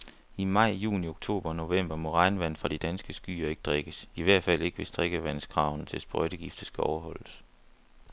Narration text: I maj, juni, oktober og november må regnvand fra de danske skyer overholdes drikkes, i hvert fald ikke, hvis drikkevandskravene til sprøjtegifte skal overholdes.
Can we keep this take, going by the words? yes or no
no